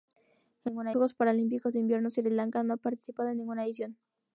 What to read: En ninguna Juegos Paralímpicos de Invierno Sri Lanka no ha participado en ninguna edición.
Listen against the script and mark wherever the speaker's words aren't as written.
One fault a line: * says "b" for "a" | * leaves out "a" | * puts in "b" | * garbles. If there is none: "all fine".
all fine